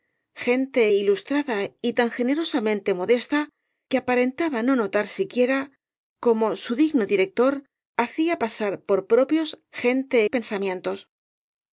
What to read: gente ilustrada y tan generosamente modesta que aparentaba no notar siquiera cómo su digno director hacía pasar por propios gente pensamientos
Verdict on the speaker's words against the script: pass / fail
pass